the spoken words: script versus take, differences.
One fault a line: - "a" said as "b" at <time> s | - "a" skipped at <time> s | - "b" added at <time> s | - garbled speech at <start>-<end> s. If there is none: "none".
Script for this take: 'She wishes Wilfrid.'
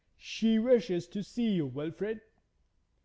- "to see you" added at 1.1 s